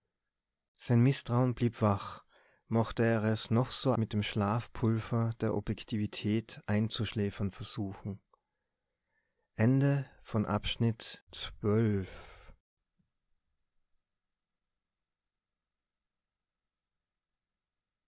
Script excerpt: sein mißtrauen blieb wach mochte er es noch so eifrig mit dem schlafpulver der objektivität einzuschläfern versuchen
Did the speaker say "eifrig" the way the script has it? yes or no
no